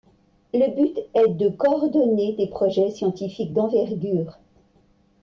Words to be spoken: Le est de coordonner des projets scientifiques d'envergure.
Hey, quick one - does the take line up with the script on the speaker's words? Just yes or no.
no